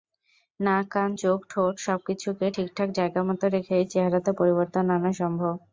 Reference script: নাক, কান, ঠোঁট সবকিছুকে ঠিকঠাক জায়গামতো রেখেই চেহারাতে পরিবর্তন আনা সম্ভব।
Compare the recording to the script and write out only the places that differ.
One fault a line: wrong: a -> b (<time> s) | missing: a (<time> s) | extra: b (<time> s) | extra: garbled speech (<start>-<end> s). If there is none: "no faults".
extra: চোখ (1.1 s)